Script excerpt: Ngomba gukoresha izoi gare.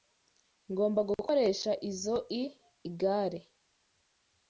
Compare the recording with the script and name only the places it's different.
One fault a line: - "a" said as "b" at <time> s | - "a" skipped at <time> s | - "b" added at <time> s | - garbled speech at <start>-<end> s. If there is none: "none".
none